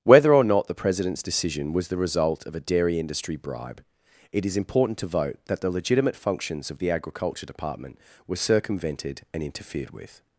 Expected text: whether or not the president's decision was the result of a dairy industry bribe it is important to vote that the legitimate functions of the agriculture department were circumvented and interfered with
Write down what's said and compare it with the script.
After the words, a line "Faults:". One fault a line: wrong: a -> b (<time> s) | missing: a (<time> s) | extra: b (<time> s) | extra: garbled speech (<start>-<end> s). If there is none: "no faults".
whether or not the president's decision was the result of a dairy industry bribe it is important to vote that the legitimate functions of the agriculture department were circumvented and interfered with
Faults:
no faults